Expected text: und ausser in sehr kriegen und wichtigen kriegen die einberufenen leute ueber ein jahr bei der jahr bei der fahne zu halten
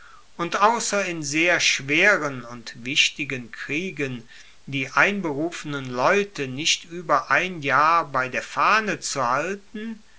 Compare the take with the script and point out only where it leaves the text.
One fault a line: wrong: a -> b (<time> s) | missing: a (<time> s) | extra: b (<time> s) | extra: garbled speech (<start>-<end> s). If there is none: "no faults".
wrong: kriegen -> schweren (1.6 s)
extra: nicht (6.5 s)
missing: jahr bei der (8.4 s)